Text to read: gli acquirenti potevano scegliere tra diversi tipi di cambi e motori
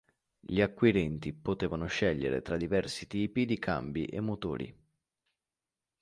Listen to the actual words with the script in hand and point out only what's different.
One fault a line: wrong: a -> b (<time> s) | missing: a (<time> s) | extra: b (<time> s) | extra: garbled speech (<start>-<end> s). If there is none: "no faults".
no faults